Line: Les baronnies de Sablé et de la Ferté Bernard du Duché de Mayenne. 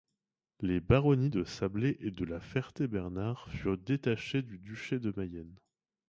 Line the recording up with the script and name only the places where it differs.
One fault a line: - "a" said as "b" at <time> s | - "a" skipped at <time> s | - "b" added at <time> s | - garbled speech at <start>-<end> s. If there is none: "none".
- "furent détachées" added at 3.5 s